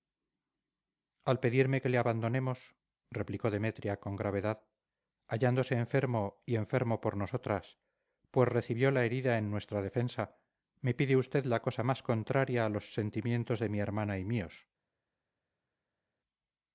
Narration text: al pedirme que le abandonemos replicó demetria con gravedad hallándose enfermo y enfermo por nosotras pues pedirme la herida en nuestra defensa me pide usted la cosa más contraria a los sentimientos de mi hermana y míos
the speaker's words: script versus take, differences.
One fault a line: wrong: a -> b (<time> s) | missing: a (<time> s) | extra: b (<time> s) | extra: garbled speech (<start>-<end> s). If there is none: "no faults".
wrong: pedirme -> recibió (8.5 s)